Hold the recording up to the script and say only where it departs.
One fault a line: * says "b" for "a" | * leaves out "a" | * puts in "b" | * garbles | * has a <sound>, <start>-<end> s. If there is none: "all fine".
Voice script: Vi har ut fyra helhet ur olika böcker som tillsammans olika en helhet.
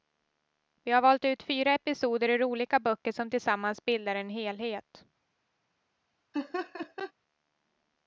* puts in "valt"
* says "episoder" for "helhet"
* says "bildar" for "olika"
* has a laugh, 6.3-7.1 s